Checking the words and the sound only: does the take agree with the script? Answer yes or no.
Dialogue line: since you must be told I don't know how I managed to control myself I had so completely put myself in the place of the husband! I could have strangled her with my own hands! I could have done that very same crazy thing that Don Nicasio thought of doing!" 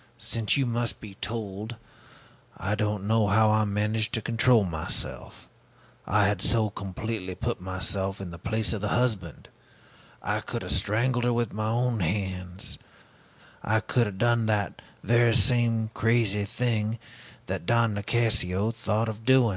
yes